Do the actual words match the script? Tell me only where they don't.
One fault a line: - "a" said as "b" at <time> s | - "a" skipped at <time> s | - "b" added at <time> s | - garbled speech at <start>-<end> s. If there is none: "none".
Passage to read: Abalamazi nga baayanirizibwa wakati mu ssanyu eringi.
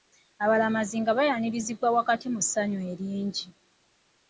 none